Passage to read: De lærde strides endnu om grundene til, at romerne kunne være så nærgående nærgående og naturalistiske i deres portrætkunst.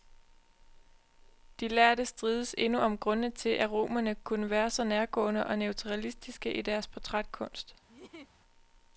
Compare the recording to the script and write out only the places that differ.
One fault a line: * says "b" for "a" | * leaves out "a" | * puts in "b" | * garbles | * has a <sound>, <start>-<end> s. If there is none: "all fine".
* leaves out "nærgående"
* has a laugh, 7.9-8.4 s